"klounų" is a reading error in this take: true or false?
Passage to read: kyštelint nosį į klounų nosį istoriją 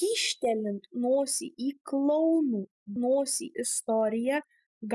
false